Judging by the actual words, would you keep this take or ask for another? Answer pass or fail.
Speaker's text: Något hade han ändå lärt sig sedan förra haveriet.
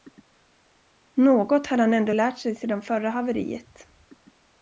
pass